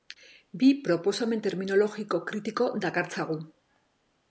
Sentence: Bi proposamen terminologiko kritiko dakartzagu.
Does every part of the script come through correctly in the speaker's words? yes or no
yes